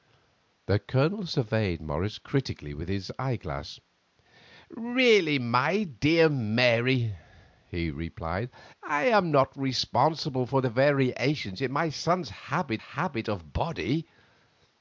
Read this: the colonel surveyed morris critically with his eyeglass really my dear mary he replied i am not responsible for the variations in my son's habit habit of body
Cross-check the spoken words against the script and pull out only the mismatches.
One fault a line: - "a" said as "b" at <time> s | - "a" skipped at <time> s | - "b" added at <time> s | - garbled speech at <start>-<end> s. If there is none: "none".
none